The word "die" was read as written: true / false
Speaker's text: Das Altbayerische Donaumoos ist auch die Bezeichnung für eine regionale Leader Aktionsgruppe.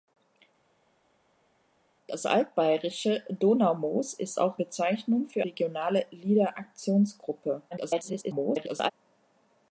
false